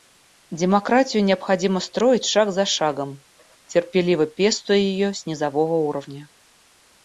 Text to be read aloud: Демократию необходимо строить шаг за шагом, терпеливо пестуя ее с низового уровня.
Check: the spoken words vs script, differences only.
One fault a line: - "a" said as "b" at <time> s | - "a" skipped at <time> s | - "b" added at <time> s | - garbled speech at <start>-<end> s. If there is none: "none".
none